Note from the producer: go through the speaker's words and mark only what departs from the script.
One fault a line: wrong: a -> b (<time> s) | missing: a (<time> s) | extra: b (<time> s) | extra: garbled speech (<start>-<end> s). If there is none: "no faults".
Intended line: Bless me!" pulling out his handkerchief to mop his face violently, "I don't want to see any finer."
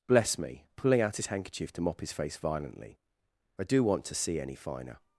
wrong: don't -> do (3.6 s)